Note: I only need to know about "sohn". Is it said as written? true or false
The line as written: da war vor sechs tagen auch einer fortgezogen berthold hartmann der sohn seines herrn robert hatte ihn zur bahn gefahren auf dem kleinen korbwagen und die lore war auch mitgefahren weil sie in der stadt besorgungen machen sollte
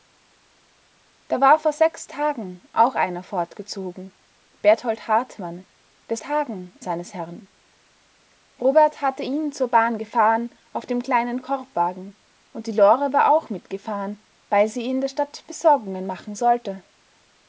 false